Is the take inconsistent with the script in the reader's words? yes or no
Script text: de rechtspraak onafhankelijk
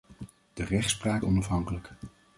no